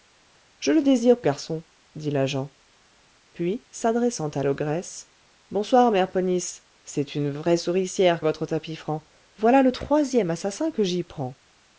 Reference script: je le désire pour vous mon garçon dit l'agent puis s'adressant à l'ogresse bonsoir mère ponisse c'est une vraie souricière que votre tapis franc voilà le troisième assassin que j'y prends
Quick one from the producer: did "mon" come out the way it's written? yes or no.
no